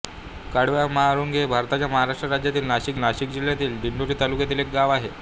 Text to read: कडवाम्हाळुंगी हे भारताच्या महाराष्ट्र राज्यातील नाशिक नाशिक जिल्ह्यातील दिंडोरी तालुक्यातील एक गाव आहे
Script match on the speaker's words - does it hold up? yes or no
yes